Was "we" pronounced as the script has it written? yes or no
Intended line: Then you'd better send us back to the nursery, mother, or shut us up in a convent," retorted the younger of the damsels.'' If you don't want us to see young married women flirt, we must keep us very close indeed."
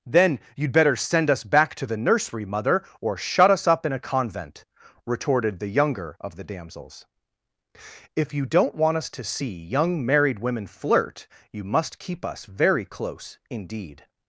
no